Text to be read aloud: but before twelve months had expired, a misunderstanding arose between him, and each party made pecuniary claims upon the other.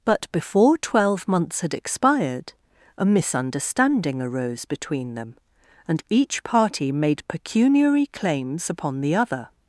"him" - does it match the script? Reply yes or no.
no